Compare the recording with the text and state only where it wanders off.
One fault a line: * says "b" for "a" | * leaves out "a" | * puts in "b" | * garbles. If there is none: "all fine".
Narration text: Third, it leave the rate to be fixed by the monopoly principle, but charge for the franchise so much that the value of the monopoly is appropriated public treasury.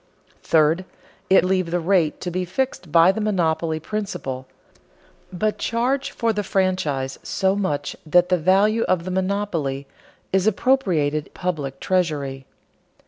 all fine